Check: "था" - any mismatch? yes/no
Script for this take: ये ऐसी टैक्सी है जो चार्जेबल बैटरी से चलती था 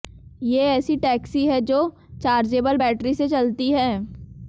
yes